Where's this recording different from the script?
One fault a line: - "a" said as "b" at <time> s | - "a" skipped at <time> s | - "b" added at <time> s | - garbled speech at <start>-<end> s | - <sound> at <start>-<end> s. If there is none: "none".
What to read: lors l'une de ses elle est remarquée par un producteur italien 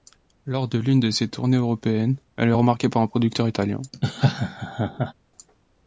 - "de" added at 0.7 s
- "tournées européennes" added at 1.3 s
- laugh at 3.9-5.1 s